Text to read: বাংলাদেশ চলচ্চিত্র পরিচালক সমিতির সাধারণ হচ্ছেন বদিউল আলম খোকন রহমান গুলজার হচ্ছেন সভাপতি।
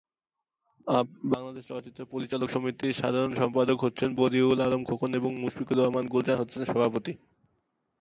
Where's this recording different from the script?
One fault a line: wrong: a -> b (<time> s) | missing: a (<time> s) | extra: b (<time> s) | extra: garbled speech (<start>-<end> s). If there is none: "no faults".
extra: সম্পাদক (3.3 s)
extra: এবং মুশফিকুর (5.1 s)